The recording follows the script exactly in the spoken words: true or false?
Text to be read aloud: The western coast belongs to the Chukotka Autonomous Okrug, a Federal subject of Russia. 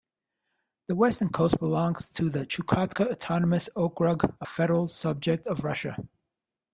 true